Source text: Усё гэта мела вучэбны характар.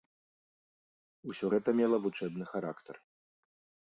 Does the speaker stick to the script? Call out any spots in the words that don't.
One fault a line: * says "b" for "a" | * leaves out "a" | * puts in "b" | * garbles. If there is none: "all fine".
all fine